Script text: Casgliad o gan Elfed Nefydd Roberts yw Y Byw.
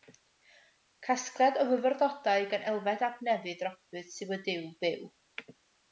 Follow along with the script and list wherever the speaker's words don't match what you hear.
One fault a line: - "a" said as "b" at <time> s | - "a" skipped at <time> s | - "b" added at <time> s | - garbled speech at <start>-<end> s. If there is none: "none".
- "fyfyrdodau" added at 1.7 s
- "ap" added at 3.1 s
- "Duw" added at 4.5 s